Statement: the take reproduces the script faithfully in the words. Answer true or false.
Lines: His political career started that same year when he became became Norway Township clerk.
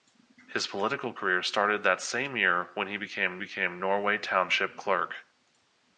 true